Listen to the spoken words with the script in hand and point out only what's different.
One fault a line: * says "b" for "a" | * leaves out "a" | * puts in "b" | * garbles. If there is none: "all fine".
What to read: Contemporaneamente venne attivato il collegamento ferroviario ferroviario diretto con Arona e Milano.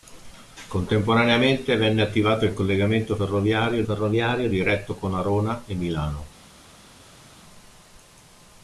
all fine